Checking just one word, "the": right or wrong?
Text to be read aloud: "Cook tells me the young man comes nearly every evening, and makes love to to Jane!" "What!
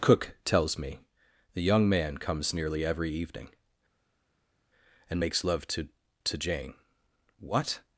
right